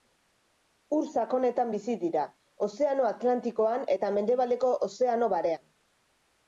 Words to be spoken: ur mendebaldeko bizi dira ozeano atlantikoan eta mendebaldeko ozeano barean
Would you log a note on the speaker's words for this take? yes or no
yes